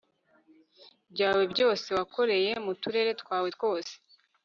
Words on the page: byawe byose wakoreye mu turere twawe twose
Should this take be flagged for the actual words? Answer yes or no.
no